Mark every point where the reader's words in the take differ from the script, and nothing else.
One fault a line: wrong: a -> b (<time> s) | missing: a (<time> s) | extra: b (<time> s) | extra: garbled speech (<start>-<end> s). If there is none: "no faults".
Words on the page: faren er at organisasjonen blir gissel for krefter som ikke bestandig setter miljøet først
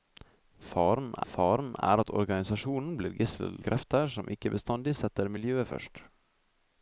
extra: faren (1.3 s)
missing: for (3.6 s)